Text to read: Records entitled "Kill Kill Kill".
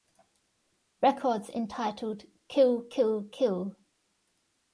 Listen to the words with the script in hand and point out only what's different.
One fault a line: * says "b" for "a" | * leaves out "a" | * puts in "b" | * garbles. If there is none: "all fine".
all fine